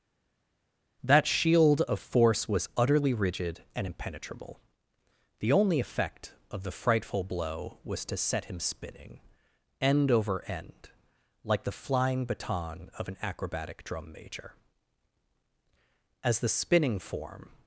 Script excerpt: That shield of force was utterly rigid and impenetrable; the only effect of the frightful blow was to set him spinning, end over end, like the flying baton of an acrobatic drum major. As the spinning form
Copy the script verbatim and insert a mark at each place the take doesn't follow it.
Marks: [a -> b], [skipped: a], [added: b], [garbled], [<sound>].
That shield of force was utterly rigid and impenetrable; the only effect of the frightful blow was to set him spinning, end over end, like the flying baton of an acrobatic drum major. As the spinning form